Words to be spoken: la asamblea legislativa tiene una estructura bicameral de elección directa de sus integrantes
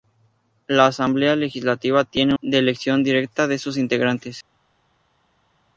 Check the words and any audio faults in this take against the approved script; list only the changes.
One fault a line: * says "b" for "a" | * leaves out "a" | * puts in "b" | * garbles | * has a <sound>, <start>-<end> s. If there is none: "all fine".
* leaves out "una estructura bicameral"